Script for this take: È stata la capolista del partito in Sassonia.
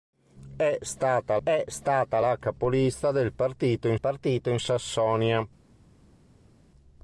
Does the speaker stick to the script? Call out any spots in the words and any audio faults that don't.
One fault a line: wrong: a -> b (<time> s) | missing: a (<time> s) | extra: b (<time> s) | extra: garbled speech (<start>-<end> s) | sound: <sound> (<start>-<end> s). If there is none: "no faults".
extra: è stata (1.4 s)
extra: partito in (4.0 s)